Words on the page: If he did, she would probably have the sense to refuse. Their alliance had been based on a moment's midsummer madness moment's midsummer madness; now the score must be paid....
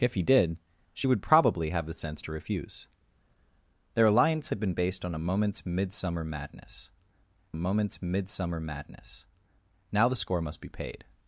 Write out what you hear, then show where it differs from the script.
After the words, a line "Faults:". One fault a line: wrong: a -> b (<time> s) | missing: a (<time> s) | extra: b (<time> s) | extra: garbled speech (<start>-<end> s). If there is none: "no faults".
If he did, she would probably have the sense to refuse. Their alliance had been based on a moment's midsummer madness moment's midsummer madness; now the score must be paid....
Faults:
no faults